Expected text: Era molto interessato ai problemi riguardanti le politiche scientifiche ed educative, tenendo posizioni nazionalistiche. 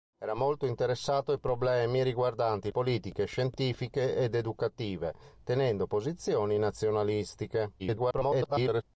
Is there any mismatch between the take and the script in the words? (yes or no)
yes